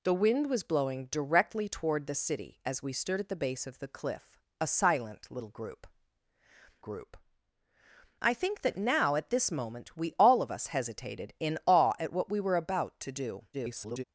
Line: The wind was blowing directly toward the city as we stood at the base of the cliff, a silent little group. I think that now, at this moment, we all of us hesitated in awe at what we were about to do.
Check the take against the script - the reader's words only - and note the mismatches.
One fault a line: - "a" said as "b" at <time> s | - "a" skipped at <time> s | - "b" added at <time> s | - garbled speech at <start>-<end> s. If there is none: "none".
- "group" added at 6.8 s
- garbled speech at 13.5-14.0 s